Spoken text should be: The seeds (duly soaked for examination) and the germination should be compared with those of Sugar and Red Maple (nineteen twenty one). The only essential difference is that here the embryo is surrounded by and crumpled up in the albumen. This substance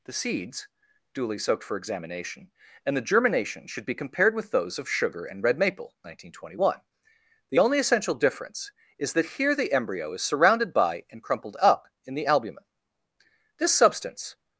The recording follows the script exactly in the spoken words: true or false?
true